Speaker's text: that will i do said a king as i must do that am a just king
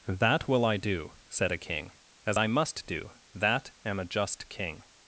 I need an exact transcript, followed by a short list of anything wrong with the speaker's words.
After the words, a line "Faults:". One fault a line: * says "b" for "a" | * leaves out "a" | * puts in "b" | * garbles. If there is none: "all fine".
that will i do said a king as i must do that am a just king
Faults:
all fine